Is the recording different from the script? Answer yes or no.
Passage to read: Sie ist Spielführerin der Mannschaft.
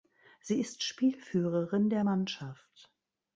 no